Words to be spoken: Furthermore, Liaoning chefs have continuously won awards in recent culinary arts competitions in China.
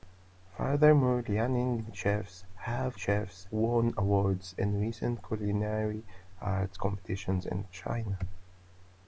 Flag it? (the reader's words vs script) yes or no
yes